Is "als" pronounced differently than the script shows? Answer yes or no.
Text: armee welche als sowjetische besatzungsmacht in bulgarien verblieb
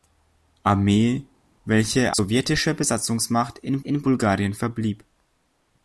yes